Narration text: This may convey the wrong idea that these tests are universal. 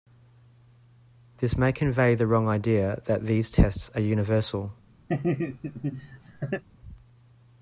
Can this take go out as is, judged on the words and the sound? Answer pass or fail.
fail